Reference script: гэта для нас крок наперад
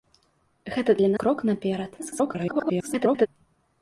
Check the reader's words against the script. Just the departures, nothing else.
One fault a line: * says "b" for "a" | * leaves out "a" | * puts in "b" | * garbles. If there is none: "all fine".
* leaves out "нас"
* garbles